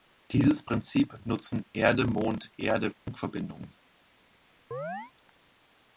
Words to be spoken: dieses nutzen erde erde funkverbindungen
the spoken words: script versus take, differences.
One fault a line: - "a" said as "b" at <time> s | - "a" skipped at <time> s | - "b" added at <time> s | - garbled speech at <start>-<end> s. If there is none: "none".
- "prinzip" added at 0.6 s
- "mond" added at 2.1 s